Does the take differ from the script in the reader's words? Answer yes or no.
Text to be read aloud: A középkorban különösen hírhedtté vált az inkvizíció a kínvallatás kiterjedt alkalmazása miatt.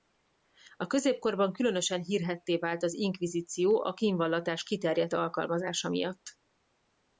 no